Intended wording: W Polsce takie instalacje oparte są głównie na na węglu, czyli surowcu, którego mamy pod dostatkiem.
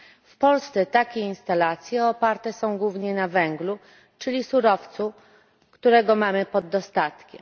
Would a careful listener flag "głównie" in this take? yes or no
no